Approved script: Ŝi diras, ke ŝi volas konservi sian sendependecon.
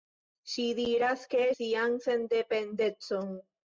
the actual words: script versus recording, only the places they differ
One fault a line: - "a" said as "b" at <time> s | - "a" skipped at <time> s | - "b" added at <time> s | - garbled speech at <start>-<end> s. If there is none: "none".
- "ŝi volas konservi" skipped at 1.4 s